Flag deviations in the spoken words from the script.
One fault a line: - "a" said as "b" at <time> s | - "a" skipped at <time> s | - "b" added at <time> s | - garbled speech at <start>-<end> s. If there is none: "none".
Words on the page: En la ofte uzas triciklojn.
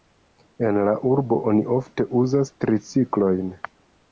- "urbo oni" added at 1.1 s